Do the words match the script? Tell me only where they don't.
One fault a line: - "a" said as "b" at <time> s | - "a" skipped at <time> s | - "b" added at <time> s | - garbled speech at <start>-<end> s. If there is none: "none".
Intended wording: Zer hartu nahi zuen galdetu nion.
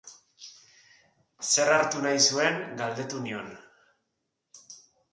none